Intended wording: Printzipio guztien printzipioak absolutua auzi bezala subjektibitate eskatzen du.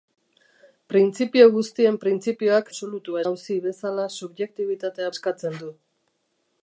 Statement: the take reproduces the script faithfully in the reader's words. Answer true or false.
true